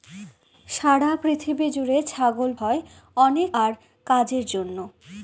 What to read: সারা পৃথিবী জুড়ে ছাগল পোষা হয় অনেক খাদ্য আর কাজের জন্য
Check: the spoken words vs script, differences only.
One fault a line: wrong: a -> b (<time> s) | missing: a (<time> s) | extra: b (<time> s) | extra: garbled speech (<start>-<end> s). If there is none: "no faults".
missing: পোষা (2.5 s)
missing: খাদ্য (3.5 s)